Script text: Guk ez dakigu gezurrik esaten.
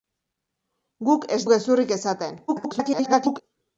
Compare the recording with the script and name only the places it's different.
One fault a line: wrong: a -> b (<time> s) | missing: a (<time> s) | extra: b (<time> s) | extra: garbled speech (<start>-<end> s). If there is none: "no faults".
missing: dakigu (1.4 s)
extra: garbled speech (2.5-3.4 s)